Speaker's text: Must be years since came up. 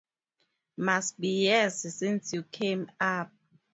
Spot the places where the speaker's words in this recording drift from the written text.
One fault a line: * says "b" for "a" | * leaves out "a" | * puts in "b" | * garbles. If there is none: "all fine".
* puts in "you"